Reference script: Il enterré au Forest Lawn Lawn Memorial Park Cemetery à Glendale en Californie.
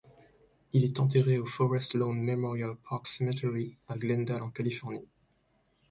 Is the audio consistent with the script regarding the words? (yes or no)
no